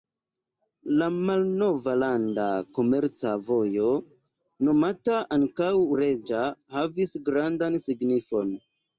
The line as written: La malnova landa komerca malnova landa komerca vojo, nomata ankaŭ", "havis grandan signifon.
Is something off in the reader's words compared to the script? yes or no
yes